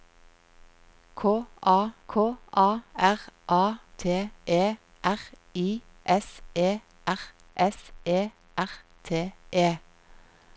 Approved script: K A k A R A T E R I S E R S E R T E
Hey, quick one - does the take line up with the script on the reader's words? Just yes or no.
yes